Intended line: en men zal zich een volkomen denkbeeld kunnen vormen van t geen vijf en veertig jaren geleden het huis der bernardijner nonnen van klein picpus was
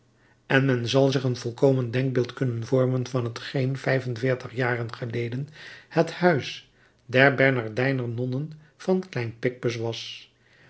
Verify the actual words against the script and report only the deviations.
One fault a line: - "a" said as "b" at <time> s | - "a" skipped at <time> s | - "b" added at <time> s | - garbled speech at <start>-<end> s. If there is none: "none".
none